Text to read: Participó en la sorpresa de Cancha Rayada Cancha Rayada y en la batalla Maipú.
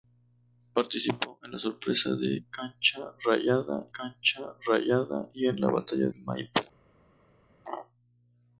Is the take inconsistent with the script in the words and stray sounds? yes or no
no